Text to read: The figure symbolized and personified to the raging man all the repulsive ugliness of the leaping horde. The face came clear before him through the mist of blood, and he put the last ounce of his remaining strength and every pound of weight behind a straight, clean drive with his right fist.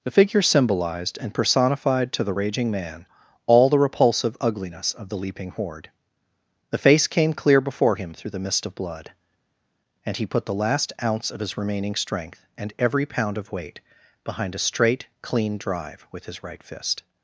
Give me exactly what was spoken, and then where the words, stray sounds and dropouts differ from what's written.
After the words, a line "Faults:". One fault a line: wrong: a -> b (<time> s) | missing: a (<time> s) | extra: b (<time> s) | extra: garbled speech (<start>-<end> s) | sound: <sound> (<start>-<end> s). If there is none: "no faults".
The figure symbolized and personified to the raging man all the repulsive ugliness of the leaping horde. The face came clear before him through the mist of blood, and he put the last ounce of his remaining strength and every pound of weight behind a straight, clean drive with his right fist.
Faults:
no faults